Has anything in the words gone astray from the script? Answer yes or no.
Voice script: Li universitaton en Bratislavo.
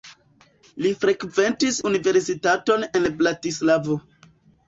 yes